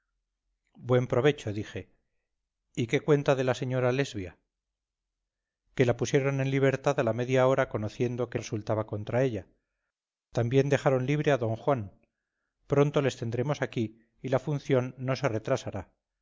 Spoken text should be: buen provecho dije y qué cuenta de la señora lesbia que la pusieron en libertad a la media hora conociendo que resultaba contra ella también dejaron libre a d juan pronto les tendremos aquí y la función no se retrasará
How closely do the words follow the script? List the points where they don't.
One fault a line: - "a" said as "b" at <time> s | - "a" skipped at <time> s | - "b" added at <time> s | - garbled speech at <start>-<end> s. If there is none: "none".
none